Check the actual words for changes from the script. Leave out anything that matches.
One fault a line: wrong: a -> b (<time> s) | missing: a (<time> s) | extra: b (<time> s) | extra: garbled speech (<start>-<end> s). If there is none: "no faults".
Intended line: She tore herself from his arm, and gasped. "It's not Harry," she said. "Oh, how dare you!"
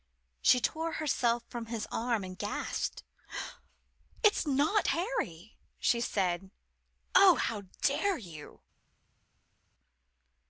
no faults